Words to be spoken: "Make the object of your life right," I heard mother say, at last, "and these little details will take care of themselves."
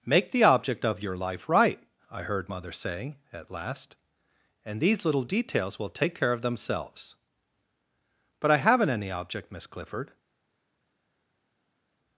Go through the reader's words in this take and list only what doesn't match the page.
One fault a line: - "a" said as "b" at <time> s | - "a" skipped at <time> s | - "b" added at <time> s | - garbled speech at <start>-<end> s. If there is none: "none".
- "But I haven't any object Miss Clifford" added at 8.4 s